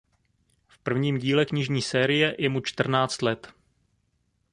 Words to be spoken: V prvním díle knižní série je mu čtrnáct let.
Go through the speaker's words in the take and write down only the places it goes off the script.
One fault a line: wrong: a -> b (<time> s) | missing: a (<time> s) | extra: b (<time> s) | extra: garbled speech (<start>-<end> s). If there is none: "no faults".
no faults